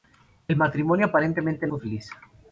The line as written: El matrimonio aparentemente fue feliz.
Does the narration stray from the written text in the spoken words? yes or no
no